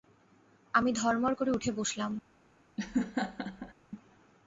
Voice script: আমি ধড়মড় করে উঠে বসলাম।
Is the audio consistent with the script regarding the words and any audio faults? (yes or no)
no